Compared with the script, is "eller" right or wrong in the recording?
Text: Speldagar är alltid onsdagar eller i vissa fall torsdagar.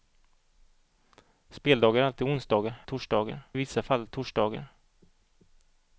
wrong